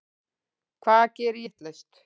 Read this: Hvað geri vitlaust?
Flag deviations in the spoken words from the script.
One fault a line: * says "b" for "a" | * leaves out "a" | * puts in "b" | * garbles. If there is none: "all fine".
all fine